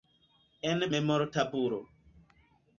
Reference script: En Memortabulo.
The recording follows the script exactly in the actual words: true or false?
true